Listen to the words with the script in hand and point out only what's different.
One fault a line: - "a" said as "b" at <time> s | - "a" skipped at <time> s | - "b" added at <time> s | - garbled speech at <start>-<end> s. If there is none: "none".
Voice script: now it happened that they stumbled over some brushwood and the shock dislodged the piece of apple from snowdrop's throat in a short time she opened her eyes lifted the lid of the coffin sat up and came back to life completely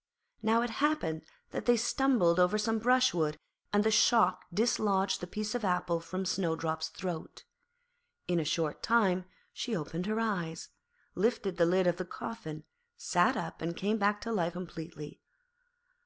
none